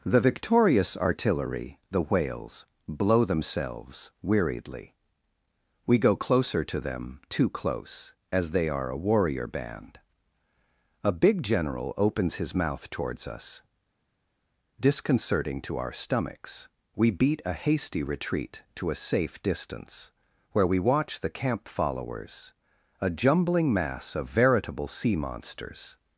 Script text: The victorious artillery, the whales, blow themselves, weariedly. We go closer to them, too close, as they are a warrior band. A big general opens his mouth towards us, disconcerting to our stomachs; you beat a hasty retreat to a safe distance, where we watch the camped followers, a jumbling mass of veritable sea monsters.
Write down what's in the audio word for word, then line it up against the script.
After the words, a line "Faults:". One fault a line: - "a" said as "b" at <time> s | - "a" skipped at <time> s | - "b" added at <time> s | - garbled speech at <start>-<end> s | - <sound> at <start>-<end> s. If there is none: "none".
The victorious artillery, the whales, blow themselves, weariedly. We go closer to them, too close, as they are a warrior band. A big general opens his mouth towards us, disconcerting to our stomachs; we beat a hasty retreat to a safe distance, where we watch the camp followers, a jumbling mass of veritable sea monsters.
Faults:
- "you" said as "we" at 17.0 s
- "camped" said as "camp" at 21.3 s